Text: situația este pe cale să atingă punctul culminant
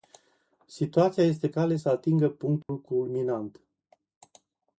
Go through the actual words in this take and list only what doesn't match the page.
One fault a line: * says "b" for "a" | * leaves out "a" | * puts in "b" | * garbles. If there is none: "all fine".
* leaves out "pe"